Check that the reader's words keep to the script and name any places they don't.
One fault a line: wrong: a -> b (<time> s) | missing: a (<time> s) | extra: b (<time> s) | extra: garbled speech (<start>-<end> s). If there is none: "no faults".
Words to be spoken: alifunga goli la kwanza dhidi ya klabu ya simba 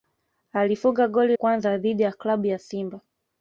missing: la (1.4 s)